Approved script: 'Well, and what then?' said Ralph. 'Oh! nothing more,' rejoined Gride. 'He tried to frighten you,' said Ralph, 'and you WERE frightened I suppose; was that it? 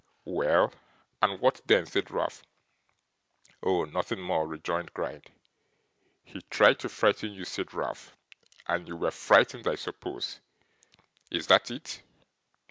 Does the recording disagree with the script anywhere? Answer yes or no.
yes